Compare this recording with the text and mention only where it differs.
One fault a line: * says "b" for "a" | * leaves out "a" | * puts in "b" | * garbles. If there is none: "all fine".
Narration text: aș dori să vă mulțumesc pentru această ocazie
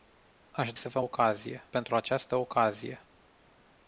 * leaves out "dori"
* says "ocazie" for "mulțumesc"